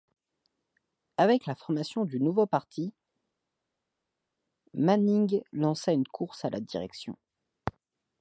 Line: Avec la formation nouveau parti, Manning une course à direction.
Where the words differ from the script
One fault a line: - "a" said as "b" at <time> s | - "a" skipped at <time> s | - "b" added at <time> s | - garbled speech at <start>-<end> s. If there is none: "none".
- "du" added at 2.0 s
- "lança" added at 5.5 s
- "la" added at 6.5 s